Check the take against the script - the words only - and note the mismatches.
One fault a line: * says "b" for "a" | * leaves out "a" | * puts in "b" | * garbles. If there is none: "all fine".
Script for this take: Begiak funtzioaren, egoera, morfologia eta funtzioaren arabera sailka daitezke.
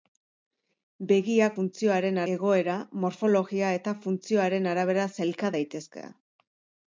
all fine